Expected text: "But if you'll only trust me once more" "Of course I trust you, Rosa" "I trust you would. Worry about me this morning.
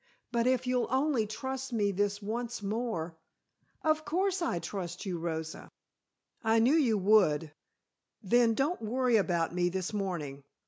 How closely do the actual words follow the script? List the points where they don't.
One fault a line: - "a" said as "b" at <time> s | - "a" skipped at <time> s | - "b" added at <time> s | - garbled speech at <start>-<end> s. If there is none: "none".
- "this" added at 1.9 s
- "trust" said as "knew" at 6.6 s
- "Then don't" added at 8.2 s